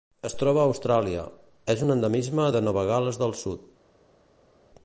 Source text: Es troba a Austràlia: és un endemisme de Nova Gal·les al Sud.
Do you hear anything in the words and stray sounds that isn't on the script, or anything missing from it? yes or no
yes